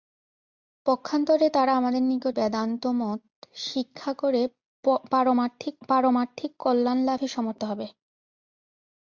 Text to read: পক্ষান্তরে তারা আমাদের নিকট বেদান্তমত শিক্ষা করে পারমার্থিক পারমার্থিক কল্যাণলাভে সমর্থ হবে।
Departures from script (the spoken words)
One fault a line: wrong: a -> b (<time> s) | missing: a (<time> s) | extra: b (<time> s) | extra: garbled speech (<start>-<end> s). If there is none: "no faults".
no faults